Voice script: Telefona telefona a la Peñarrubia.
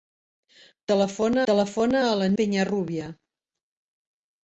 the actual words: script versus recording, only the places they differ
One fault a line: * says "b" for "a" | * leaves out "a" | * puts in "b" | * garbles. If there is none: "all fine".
all fine